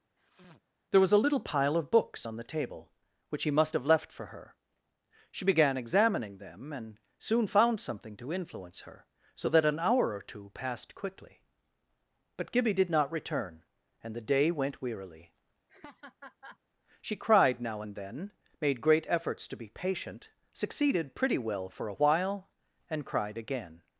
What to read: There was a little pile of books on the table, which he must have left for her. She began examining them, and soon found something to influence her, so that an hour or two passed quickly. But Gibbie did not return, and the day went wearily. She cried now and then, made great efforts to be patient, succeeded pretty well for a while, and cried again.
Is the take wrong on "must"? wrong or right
right